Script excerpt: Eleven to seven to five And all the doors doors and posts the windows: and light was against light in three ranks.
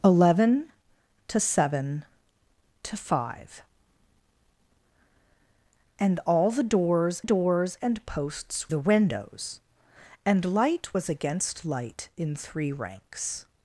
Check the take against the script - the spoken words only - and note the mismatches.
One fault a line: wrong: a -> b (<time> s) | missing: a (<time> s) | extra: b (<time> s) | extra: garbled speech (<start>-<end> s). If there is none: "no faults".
no faults